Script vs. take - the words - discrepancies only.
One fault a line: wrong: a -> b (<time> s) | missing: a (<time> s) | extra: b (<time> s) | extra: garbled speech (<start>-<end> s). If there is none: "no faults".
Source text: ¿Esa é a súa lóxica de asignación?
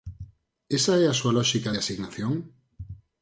no faults